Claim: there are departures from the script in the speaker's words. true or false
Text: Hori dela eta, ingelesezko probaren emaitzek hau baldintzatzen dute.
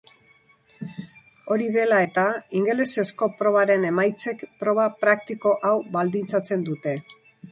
true